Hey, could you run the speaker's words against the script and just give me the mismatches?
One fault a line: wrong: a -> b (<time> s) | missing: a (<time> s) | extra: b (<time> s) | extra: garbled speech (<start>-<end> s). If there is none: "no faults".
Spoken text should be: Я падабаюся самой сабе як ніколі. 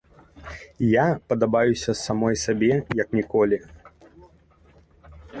no faults